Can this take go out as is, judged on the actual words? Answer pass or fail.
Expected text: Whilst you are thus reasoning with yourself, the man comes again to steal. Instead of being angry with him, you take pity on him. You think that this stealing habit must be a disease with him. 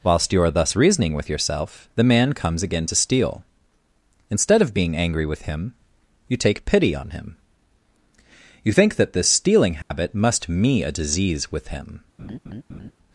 fail